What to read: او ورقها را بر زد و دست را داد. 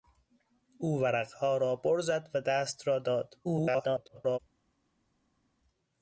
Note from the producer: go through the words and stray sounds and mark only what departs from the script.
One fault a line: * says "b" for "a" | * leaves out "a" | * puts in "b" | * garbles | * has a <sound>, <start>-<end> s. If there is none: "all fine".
* garbles